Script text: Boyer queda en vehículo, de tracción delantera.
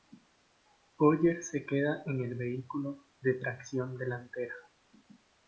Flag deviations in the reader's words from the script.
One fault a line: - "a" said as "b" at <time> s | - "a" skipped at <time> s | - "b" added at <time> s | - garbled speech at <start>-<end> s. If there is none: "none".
- "se" added at 1.4 s
- "el" added at 2.2 s